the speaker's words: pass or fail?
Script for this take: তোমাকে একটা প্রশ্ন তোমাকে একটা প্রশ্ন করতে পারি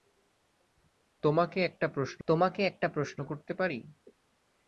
pass